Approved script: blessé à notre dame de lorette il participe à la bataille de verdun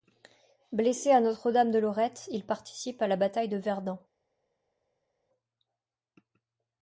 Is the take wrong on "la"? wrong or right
right